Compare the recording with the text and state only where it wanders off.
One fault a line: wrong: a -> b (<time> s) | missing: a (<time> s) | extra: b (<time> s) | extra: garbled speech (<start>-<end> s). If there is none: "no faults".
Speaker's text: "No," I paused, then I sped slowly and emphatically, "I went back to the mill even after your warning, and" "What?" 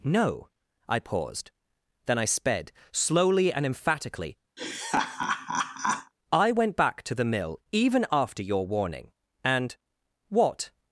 no faults